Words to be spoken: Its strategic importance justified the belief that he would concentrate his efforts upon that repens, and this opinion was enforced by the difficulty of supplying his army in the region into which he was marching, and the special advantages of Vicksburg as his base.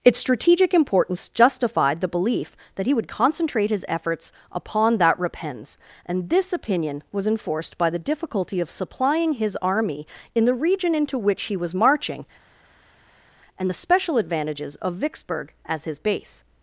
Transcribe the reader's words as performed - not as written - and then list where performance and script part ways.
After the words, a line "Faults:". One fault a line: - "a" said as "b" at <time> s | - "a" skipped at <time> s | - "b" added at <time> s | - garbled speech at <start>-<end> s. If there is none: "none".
Its strategic importance justified the belief that he would concentrate his efforts upon that repens, and this opinion was enforced by the difficulty of supplying his army in the region into which he was marching, and the special advantages of Vicksburg as his base.
Faults:
none